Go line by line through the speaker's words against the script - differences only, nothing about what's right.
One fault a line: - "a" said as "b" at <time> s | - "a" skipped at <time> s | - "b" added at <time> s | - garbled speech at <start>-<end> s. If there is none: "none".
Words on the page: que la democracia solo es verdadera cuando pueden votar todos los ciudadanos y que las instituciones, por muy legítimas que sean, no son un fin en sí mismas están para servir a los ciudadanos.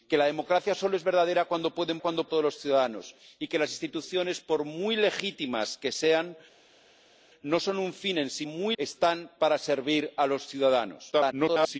- "votar" said as "cuando" at 2.0 s
- "mismas" said as "muy" at 8.4 s
- garbled speech at 11.1-11.8 s